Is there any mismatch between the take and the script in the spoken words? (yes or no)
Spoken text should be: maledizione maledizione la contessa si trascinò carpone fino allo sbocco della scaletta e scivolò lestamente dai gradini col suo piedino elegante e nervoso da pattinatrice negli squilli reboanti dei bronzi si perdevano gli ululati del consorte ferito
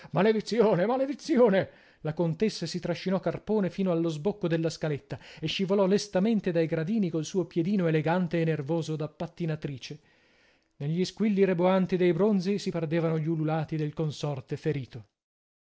no